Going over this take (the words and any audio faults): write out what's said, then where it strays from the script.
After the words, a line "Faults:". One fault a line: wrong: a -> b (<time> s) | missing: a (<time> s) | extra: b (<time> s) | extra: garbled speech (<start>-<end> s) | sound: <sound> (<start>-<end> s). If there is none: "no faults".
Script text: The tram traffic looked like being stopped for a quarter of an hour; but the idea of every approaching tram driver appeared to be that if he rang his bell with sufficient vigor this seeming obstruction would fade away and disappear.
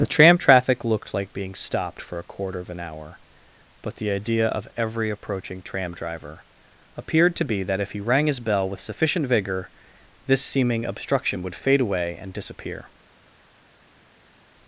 The tram traffic looked like being stopped for a quarter of an hour; but the idea of every approaching tram driver appeared to be that if he rang his bell with sufficient vigor this seeming obstruction would fade away and disappear.
Faults:
no faults